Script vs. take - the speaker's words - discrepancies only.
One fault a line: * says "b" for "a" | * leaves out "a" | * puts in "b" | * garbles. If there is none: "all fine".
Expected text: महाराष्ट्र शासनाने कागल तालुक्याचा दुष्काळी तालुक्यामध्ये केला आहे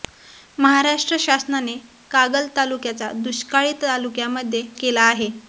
all fine